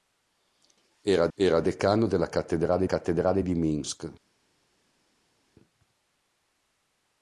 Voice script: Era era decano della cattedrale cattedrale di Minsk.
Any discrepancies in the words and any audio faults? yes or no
no